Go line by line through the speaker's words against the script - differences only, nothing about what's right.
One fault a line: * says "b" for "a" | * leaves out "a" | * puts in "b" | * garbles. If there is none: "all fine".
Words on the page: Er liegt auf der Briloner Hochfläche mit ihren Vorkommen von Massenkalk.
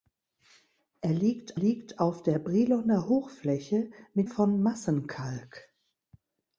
* puts in "liegt"
* leaves out "ihren Vorkommen"